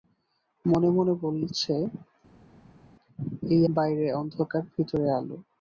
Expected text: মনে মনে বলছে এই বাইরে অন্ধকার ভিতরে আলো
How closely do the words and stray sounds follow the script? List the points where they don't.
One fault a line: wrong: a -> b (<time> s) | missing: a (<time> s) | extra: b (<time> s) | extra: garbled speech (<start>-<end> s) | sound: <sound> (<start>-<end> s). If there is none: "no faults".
no faults